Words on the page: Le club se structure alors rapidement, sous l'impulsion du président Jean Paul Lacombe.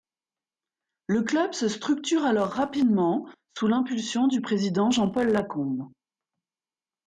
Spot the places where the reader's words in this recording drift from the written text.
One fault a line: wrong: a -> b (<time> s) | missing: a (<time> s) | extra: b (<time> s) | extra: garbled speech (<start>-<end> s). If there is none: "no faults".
no faults